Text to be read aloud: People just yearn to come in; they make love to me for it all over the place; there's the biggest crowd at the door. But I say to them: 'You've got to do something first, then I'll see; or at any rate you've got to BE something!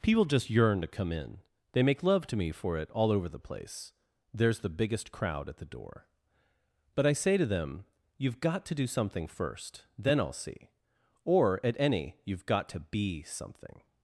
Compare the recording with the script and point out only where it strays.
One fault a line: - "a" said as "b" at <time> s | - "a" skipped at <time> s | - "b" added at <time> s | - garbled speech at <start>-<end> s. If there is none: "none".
- "rate" skipped at 12.2 s